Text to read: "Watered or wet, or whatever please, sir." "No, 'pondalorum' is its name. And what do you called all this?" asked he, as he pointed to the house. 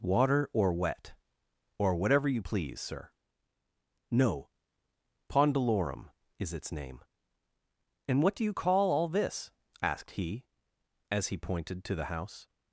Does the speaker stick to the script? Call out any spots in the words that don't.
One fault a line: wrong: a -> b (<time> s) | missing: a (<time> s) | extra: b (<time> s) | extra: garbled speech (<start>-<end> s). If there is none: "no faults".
wrong: Watered -> Water (0.0 s)
extra: you (2.3 s)
wrong: called -> call (8.5 s)